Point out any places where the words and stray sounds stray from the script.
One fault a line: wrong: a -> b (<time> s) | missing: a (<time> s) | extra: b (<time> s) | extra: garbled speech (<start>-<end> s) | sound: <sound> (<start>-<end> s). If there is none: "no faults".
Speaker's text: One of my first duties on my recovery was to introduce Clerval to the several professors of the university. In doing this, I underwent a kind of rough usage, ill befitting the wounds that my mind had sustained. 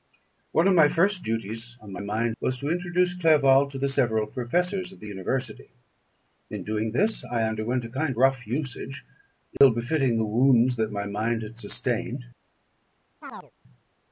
wrong: recovery -> mind (2.0 s)
missing: of (8.2 s)
sound: dropout (9.6-9.6 s)
sound: chirp (13.2-13.5 s)